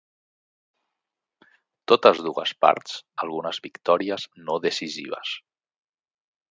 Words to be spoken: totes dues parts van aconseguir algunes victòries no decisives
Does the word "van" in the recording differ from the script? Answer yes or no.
yes